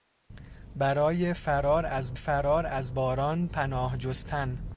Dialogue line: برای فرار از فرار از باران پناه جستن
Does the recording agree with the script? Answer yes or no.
yes